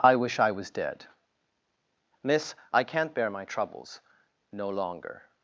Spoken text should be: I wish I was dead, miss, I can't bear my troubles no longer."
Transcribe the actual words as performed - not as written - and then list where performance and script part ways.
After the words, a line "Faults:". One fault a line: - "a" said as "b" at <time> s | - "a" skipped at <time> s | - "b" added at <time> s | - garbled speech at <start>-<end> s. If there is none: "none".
I wish I was dead, miss, I can't bear my troubles no longer."
Faults:
none